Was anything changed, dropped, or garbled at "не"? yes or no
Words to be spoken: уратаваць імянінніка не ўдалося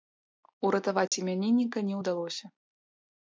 no